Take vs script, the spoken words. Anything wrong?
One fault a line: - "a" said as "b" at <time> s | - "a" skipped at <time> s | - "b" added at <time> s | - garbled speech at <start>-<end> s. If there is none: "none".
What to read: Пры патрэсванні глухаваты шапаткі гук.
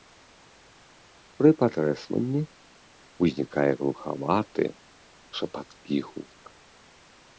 - "ўзнікае" added at 3.2 s